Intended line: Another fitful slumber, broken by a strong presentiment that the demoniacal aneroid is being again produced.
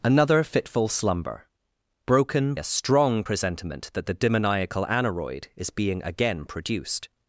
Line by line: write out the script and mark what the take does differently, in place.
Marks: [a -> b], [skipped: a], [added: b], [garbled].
Another fitful slumber, broken [skipped: by] a strong presentiment that the demoniacal aneroid is being again produced.